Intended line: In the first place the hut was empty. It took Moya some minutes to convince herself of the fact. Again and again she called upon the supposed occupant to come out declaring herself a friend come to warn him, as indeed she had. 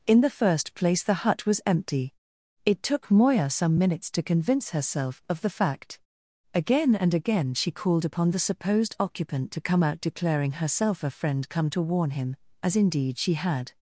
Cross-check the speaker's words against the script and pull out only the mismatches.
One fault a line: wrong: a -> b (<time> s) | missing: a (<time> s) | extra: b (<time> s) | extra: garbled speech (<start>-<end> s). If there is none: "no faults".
no faults